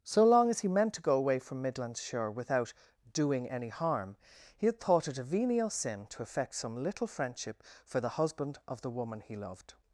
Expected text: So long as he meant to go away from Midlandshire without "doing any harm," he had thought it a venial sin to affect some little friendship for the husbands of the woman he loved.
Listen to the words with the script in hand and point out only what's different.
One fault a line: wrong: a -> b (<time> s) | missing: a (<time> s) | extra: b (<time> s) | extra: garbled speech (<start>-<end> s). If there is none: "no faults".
wrong: husbands -> husband (8.1 s)